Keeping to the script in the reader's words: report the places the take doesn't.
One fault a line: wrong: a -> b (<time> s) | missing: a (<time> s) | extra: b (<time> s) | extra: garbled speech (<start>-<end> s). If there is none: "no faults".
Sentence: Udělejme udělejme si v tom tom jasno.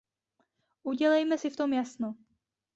missing: udělejme (1.4 s)
missing: tom (1.7 s)